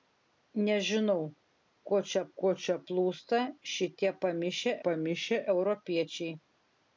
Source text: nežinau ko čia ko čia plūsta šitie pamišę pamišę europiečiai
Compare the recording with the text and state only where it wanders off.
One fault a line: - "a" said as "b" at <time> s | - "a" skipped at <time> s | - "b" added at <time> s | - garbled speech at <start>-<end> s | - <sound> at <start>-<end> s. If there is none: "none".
none